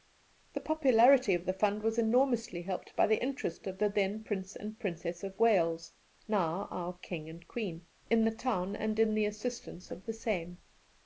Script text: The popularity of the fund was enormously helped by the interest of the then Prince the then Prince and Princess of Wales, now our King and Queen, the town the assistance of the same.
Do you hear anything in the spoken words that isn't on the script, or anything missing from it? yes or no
yes